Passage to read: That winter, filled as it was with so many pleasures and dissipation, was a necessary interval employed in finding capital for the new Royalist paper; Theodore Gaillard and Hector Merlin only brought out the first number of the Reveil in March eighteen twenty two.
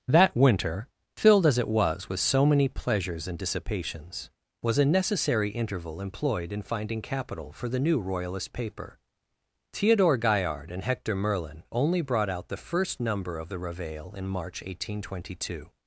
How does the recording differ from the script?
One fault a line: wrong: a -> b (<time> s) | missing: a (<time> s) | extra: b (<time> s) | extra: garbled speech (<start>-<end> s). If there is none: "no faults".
wrong: dissipation -> dissipations (3.4 s)